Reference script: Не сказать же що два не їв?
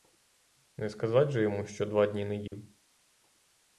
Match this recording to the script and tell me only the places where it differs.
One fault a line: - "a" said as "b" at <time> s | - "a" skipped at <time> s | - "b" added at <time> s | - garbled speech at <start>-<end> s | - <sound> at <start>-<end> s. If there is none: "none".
- "йому" added at 1.4 s
- "дні" added at 2.1 s
- dropout at 2.5-2.5 s